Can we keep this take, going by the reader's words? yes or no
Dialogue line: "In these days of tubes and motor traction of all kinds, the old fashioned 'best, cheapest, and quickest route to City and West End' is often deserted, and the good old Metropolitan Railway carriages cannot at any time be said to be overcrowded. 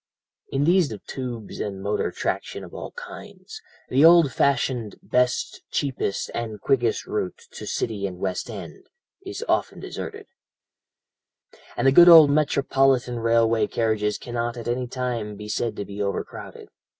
no